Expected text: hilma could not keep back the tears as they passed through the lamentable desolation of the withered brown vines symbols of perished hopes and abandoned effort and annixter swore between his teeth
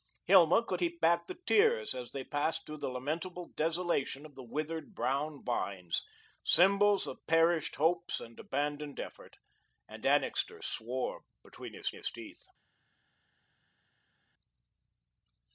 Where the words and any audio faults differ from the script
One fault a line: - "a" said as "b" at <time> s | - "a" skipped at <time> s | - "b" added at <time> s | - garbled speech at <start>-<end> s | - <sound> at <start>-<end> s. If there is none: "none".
- "not" skipped at 0.8 s
- "his" added at 11.9 s